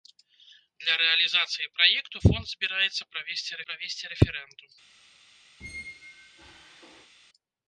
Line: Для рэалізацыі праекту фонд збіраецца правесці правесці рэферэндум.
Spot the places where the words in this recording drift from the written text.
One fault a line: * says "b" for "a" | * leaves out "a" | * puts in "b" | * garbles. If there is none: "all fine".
all fine